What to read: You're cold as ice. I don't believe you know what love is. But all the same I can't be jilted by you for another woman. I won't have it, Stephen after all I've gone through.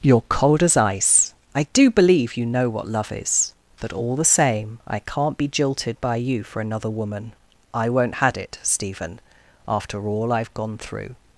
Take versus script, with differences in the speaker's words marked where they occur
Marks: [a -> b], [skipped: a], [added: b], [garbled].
You're cold as ice. I [don't -> do] believe you know what love is. But all the same I can't be jilted by you for another woman. I won't [have -> had] it, Stephen after all I've gone through.